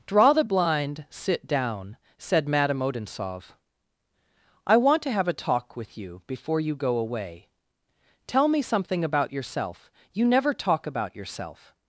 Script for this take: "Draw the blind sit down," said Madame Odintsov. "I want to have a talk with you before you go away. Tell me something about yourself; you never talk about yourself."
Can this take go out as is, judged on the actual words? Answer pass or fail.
pass